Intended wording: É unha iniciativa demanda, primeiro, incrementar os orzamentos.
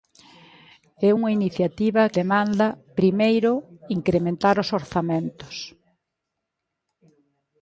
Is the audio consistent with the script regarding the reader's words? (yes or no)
yes